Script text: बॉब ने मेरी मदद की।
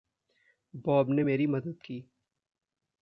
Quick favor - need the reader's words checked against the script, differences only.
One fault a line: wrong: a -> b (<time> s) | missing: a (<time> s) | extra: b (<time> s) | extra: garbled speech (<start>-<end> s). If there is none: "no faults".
no faults